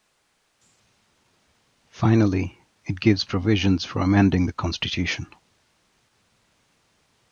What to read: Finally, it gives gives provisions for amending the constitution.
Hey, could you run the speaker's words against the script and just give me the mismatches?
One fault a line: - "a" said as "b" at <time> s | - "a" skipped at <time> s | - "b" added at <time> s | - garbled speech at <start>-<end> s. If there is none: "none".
- "gives" skipped at 3.2 s